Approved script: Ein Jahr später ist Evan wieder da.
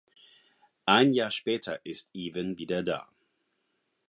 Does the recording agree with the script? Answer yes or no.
yes